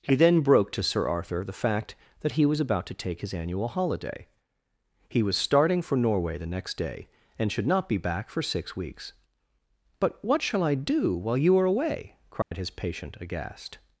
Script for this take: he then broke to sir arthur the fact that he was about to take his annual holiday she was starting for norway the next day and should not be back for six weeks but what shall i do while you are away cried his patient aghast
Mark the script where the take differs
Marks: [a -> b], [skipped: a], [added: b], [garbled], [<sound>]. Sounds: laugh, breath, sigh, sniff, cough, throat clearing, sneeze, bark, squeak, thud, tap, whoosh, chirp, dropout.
he then broke to sir arthur the fact that he was about to take his annual holiday [she -> he] was starting for norway the next day and should not be back for six weeks but what shall i do while you are away cried [dropout] his patient aghast